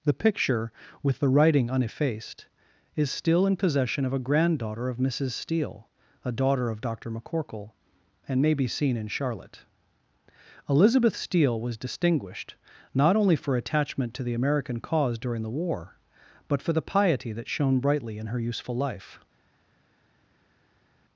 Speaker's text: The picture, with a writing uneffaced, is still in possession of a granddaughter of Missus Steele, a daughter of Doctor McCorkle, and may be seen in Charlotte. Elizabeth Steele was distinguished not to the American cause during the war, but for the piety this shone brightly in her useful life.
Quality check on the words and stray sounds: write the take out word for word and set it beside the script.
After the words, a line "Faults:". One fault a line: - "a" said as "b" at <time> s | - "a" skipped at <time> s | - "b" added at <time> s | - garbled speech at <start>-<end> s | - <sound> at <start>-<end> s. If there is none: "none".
The picture, with the writing uneffaced, is still in possession of a granddaughter of Missus Steele, a daughter of Doctor McCorkle, and may be seen in Charlotte. Elizabeth Steele was distinguished not only for attachment to the American cause during the war, but for the piety that shone brightly in her useful life.
Faults:
- "a" said as "the" at 1.2 s
- "only for attachment" added at 13.2 s
- "this" said as "that" at 17.3 s